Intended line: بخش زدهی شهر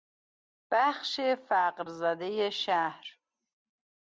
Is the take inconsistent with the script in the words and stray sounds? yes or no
yes